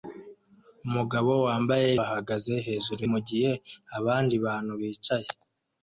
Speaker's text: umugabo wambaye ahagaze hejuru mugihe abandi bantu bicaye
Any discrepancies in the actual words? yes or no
no